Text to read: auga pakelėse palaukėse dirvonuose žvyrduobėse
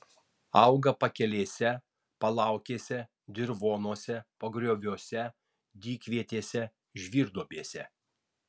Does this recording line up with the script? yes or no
no